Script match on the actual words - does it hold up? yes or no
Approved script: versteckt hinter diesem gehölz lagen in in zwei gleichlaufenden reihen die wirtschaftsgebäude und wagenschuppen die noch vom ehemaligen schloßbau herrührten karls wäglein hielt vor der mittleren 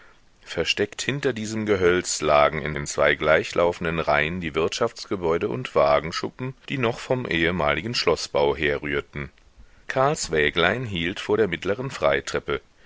yes